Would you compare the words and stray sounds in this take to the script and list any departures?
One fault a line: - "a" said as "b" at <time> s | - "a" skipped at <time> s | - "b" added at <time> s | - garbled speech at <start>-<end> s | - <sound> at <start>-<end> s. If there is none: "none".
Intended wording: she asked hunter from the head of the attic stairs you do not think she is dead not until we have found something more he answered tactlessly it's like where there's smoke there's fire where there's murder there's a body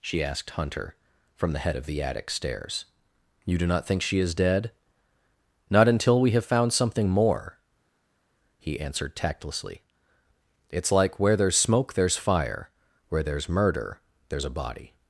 none